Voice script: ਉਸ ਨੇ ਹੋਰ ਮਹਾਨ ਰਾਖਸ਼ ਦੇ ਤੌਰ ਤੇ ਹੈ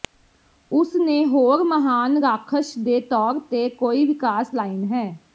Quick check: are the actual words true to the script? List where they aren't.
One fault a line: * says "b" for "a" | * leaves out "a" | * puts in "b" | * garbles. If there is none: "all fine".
* puts in "ਕੋਈ ਵਿਕਾਸ ਲਾਈਨ"